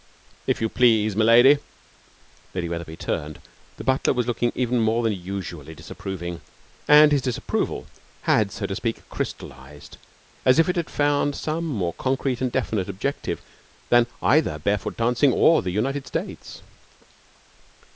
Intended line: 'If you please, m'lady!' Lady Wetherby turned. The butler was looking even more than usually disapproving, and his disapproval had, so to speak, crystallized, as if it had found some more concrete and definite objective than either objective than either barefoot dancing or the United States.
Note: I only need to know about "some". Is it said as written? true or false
true